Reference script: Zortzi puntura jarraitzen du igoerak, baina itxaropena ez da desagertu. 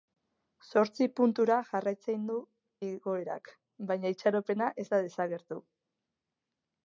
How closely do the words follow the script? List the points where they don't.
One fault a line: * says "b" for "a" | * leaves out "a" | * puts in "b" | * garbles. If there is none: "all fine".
all fine